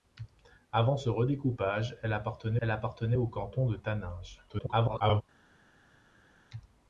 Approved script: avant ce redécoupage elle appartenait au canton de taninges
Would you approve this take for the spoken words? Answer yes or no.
no